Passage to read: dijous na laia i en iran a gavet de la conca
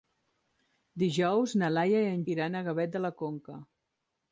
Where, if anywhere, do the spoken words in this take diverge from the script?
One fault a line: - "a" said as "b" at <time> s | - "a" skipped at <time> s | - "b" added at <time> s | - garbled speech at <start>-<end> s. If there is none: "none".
none